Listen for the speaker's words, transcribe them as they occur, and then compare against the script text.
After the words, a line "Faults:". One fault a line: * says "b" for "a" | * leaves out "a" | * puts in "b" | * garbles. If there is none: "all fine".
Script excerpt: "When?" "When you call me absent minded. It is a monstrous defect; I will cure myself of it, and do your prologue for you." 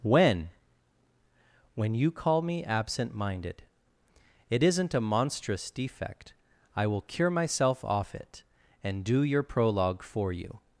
"When?" "When you call me absent minded. It isn't a monstrous defect; I will cure myself off it, and do your prologue for you."
Faults:
* says "isn't" for "is"
* says "off" for "of"